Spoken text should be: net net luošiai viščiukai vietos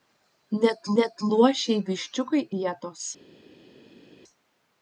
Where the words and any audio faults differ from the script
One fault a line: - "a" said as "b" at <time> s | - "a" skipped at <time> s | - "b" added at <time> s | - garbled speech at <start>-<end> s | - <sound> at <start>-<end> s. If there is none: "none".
none